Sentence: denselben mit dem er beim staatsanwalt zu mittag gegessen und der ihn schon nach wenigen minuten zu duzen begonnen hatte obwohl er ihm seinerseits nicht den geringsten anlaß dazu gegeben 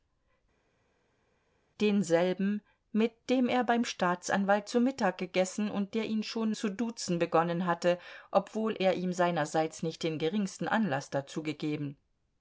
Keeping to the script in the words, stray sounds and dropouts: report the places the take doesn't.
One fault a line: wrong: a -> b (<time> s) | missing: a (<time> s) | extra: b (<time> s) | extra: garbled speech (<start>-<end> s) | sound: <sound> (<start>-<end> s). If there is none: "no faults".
missing: nach wenigen minuten (6.5 s)